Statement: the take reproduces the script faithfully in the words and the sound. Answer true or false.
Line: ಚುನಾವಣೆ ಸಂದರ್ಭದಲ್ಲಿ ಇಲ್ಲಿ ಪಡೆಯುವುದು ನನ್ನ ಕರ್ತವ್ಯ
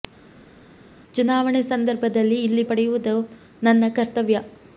true